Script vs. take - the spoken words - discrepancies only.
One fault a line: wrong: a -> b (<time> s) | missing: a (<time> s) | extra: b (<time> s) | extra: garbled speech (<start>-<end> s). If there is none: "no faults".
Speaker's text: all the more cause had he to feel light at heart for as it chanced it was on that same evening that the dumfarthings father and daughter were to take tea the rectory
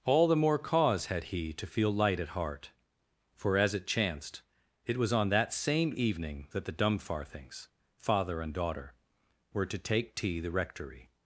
no faults